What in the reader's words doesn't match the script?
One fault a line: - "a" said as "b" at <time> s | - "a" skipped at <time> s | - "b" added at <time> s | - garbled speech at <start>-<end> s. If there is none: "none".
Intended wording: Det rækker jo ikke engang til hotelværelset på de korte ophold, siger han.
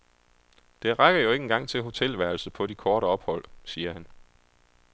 none